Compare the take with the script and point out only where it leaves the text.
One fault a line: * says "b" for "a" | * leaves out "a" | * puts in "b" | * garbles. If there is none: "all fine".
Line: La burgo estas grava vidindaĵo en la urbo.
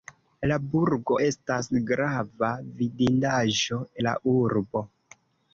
* leaves out "en"